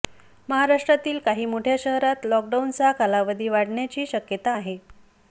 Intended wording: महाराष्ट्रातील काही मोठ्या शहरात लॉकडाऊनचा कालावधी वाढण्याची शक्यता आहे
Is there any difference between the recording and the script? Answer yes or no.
no